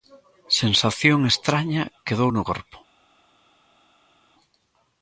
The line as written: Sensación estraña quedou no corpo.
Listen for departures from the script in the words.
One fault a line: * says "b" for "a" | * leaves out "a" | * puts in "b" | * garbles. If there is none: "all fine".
all fine